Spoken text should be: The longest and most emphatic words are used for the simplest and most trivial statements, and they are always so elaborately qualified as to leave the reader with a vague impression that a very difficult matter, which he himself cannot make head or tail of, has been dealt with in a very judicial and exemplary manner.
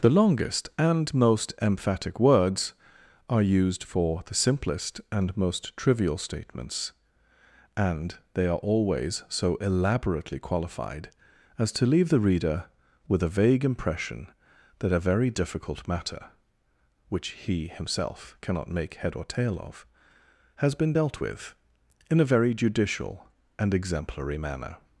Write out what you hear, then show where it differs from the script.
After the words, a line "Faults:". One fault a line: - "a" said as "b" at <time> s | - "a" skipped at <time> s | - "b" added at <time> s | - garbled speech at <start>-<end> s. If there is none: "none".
The longest and most emphatic words are used for the simplest and most trivial statements, and they are always so elaborately qualified as to leave the reader with a vague impression that a very difficult matter, which he himself cannot make head or tail of, has been dealt with in a very judicial and exemplary manner.
Faults:
none